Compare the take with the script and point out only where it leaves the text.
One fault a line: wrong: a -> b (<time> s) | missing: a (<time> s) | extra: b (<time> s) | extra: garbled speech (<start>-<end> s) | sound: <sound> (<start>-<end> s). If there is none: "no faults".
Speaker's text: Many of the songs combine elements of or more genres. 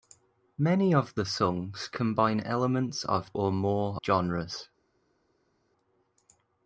no faults